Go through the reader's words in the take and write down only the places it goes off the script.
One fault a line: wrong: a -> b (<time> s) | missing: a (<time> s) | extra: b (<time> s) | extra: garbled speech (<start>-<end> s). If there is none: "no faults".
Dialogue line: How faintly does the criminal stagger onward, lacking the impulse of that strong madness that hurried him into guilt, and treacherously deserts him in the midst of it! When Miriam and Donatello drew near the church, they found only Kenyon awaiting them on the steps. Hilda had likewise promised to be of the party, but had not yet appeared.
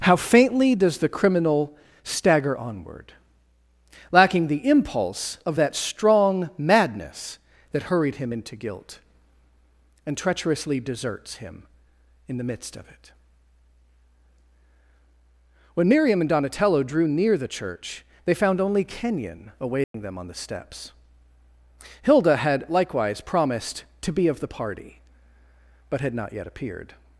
no faults